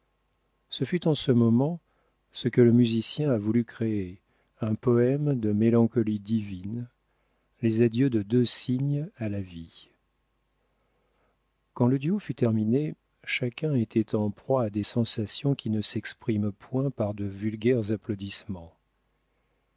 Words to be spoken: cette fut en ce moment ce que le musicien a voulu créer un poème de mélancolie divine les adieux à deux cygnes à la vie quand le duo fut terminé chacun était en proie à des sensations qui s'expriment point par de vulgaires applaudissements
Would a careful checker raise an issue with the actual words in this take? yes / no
yes